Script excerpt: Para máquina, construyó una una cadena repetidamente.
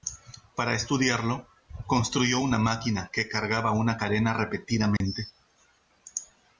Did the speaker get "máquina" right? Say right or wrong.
wrong